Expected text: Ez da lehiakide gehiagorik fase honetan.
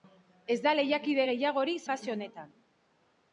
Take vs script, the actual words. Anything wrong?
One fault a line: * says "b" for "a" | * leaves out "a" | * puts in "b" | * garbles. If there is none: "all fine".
all fine